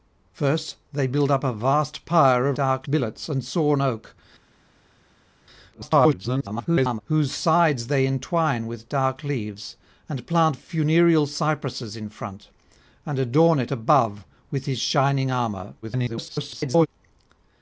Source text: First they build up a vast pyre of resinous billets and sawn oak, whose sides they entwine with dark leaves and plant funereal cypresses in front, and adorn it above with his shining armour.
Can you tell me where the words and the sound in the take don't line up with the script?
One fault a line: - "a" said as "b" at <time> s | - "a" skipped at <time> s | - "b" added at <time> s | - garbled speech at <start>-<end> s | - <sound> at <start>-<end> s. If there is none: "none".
- "resinous" said as "dark" at 2.5 s
- garbled speech at 5.7-7.0 s
- garbled speech at 15.8-16.9 s